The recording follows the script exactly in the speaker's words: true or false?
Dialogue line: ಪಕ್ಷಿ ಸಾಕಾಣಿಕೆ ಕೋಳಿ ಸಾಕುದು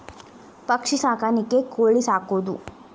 true